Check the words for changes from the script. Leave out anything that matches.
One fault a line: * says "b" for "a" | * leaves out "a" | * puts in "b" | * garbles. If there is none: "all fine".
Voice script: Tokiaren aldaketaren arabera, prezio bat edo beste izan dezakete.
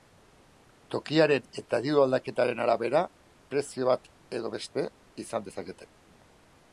* puts in "eta diru"